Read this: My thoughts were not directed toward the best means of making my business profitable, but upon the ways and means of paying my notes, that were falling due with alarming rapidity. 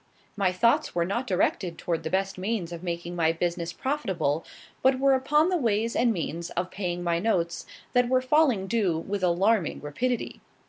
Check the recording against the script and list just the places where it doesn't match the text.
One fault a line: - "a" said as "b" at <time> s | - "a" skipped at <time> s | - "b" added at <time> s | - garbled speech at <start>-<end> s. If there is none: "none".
- "were" added at 5.0 s